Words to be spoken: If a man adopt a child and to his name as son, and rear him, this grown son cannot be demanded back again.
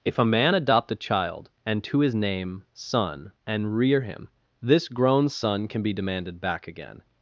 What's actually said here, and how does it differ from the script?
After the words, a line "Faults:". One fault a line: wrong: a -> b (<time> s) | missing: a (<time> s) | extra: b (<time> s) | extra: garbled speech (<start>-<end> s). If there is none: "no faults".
If a man adopt a child and to his name son, and rear him, this grown son can be demanded back again.
Faults:
missing: as (2.6 s)
wrong: cannot -> can (5.7 s)